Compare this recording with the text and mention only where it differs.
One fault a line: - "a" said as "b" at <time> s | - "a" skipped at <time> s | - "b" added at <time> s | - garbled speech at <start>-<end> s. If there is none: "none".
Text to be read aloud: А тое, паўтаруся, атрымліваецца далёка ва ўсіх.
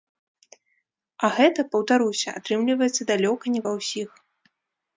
- "тое" said as "гэта" at 1.4 s
- "не" added at 3.6 s